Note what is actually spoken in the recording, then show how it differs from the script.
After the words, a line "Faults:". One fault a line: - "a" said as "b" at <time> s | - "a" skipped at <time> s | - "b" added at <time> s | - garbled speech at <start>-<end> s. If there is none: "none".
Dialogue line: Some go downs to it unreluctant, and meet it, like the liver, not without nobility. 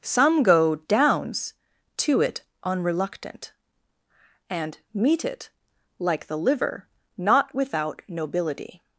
Some go downs to it unreluctant, and meet it, like the liver, not without nobility.
Faults:
none